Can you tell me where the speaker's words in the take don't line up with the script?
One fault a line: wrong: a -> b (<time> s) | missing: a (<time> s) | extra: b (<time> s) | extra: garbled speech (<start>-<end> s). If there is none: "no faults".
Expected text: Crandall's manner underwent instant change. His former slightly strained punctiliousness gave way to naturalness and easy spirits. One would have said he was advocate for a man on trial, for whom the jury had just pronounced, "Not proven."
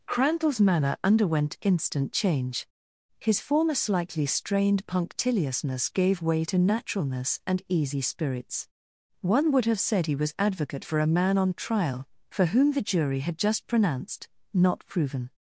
no faults